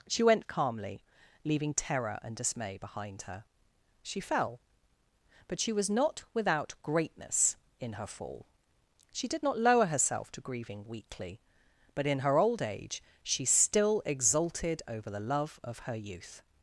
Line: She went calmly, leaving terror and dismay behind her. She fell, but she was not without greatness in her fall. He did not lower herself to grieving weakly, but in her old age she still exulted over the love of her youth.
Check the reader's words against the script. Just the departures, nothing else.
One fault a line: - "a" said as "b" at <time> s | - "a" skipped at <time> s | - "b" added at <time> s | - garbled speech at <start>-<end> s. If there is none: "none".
- "He" said as "She" at 9.1 s